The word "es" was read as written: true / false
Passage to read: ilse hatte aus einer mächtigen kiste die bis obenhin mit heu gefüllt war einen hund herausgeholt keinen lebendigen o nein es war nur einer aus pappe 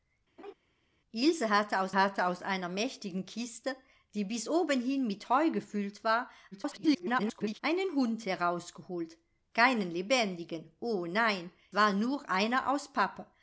false